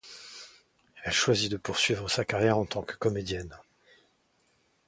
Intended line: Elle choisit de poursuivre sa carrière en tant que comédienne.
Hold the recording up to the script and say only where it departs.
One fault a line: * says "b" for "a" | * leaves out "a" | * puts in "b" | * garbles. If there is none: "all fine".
all fine